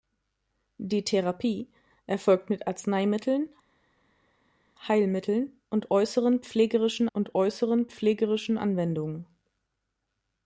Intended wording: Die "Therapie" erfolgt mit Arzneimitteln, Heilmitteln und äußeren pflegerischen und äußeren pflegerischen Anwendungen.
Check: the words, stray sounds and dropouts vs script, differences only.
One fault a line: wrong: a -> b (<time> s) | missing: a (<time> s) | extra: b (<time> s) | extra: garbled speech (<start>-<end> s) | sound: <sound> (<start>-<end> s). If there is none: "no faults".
no faults